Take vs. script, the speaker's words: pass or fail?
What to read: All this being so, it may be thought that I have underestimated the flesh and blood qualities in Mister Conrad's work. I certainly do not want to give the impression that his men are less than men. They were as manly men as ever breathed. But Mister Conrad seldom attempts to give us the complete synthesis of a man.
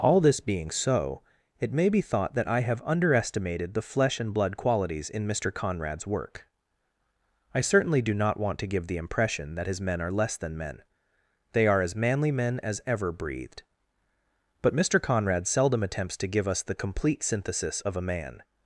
fail